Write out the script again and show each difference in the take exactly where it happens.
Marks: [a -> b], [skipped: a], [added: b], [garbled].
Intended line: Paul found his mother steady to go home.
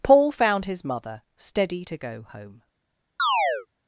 Paul found his mother steady to go home.